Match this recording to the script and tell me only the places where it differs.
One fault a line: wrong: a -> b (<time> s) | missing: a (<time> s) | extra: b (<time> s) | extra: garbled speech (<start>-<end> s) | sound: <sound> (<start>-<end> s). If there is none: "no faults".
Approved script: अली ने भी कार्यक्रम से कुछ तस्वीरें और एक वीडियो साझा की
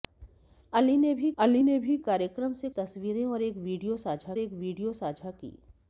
extra: अली ने भी (1.4 s)
missing: कुछ (2.7 s)
extra: एक वीडियो साझा (4.4 s)